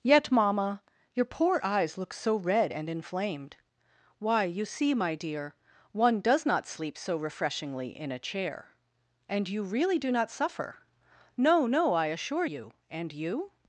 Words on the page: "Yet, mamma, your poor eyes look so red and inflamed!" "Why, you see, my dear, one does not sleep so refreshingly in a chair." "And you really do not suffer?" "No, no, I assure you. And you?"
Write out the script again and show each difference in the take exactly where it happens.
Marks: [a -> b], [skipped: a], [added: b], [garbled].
"Yet, mamma, your poor eyes look so red and inflamed!" "Why, you see, my dear, one does not sleep so refreshingly in a chair." "And you really do not suffer?" "No, no, I assure you. And you?"